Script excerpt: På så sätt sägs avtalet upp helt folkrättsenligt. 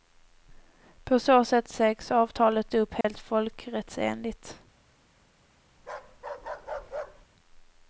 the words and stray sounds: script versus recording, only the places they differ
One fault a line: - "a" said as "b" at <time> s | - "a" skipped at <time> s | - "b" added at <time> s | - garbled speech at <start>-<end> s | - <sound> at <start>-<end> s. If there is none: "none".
- dropout at 3.0-3.0 s
- bark at 5.8-7.3 s